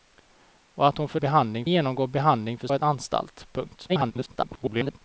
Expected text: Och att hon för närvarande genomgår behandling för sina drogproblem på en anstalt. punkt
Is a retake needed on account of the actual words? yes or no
yes